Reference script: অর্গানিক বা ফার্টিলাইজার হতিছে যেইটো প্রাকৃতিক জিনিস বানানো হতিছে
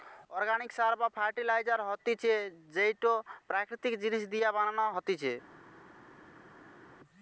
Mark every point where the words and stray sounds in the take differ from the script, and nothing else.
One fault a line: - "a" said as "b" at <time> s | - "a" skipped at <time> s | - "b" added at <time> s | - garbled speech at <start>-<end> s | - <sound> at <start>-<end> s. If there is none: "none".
- "সার" added at 0.7 s
- "দিয়া" added at 4.3 s